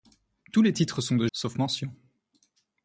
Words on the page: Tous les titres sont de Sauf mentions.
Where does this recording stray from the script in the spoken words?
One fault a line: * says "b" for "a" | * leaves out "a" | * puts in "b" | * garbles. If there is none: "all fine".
all fine